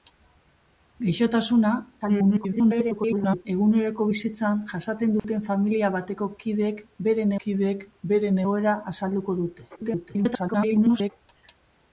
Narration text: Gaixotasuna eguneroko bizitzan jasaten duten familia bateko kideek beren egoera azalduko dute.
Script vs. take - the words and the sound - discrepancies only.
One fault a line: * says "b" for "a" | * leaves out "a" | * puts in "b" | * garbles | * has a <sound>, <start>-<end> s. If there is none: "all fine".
* garbles
* has a dropout, 5.2-5.2 s
* puts in "kideek beren"
* garbles